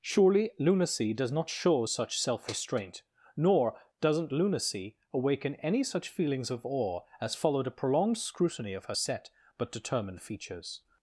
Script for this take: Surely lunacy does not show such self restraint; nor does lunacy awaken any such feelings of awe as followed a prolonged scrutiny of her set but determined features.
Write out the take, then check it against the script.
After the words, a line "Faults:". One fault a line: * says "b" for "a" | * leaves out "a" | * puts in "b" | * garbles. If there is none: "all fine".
Surely lunacy does not show such self restraint; nor doesn't lunacy awaken any such feelings of awe as followed a prolonged scrutiny of her set but determined features.
Faults:
* says "doesn't" for "does"